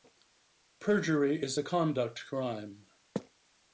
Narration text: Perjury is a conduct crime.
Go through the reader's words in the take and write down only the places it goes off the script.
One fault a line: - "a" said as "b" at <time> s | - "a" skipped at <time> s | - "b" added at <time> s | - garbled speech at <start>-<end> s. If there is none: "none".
none